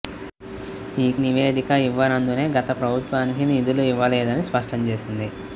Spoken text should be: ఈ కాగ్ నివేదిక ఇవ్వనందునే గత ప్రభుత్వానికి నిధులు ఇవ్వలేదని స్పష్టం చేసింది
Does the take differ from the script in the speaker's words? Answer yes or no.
yes